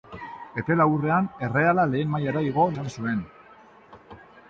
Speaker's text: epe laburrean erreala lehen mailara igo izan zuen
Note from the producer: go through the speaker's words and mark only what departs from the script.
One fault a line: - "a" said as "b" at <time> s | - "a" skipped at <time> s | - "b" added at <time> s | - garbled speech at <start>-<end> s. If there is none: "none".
none